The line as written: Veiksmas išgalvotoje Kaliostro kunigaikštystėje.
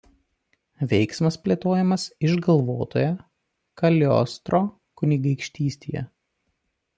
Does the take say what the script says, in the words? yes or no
no